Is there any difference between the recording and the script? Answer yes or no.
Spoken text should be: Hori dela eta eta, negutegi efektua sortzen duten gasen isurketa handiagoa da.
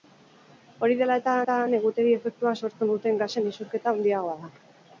no